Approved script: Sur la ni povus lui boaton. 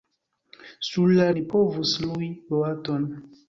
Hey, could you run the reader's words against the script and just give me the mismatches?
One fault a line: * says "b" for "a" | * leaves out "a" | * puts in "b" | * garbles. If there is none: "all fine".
all fine